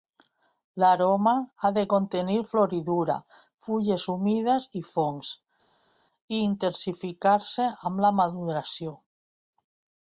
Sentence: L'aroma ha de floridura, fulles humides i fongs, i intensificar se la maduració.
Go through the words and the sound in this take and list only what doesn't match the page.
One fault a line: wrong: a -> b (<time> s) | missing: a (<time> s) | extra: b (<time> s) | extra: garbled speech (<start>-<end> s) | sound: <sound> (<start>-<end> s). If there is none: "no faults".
extra: contenir (1.9 s)
extra: amb (7.9 s)